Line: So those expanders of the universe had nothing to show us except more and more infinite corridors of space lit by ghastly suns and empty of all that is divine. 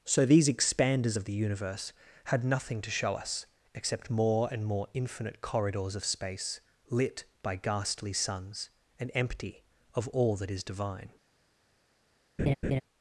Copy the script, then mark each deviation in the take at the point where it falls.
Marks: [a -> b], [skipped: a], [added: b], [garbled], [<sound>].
So [those -> these] expanders of the universe had nothing to show us except more and more infinite corridors of space lit by ghastly suns and empty of all that is divine. [laugh]